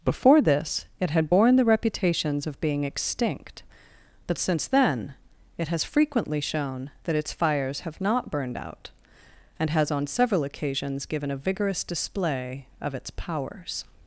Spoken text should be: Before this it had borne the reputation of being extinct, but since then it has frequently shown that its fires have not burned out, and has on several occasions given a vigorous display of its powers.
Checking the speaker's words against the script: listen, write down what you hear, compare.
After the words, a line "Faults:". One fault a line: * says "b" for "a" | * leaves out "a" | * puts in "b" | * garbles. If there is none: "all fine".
Before this it had borne the reputations of being extinct, but since then it has frequently shown that its fires have not burned out, and has on several occasions given a vigorous display of its powers.
Faults:
* says "reputations" for "reputation"